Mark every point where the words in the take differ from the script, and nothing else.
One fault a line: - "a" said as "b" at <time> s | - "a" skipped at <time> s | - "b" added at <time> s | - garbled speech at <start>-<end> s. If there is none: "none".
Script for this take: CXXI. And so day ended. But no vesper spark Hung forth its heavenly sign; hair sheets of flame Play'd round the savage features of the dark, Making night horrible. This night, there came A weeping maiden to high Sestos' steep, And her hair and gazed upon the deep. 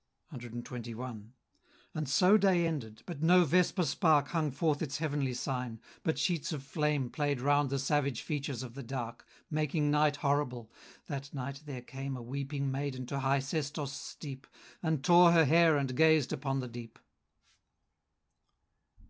- "hair" said as "but" at 6.0 s
- "This" said as "That" at 11.1 s
- "tore" added at 15.0 s